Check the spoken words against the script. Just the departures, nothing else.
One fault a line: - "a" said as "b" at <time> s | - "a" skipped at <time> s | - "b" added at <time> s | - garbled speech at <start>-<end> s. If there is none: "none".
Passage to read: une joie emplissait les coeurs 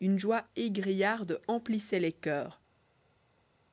- "égrillarde" added at 0.6 s